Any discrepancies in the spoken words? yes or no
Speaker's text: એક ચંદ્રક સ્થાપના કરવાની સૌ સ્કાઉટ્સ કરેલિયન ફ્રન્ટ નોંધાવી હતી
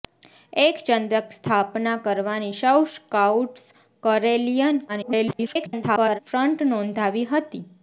yes